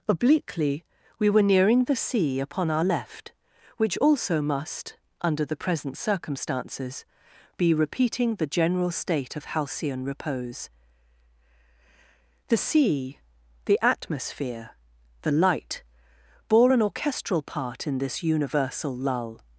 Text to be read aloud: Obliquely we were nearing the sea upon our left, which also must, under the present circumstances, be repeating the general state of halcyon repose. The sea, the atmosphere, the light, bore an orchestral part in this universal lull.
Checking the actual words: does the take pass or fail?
pass